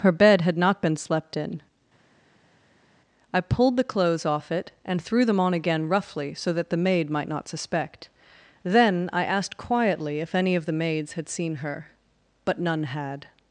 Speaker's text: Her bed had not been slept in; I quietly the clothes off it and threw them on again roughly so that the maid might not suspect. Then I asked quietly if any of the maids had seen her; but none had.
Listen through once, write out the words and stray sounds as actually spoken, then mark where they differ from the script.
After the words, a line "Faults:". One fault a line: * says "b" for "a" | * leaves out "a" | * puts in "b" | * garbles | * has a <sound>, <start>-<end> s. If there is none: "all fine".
Her bed had not been slept in; I pulled the clothes off it and threw them on again roughly so that the maid might not suspect. Then I asked quietly if any of the maids had seen her; but none had.
Faults:
* says "pulled" for "quietly"